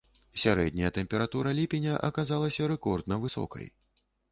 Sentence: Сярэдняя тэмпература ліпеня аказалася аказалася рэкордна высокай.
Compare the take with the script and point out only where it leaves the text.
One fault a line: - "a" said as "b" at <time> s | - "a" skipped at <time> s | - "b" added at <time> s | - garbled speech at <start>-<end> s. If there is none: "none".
- "аказалася" skipped at 2.6 s